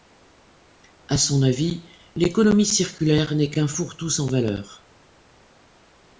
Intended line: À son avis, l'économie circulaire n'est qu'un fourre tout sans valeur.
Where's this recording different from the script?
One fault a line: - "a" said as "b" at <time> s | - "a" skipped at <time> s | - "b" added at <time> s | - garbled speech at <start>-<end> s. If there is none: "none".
none